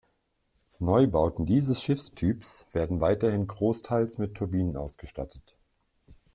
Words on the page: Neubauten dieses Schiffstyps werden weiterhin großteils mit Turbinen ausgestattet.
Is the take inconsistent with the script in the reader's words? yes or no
no